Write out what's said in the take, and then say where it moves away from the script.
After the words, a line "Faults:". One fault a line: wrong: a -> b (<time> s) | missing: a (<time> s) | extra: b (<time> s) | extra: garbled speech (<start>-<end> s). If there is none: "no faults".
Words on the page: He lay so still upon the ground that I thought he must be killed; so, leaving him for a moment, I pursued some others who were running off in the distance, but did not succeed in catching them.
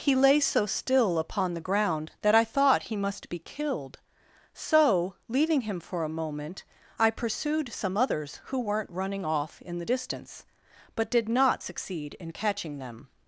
He lay so still upon the ground that I thought he must be killed; so, leaving him for a moment, I pursued some others who weren't running off in the distance, but did not succeed in catching them.
Faults:
wrong: were -> weren't (8.6 s)